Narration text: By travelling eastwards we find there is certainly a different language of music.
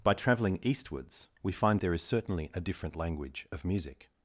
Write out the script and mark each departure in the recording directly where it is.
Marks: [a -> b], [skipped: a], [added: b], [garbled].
By travelling eastwards we find there is certainly a different language of music.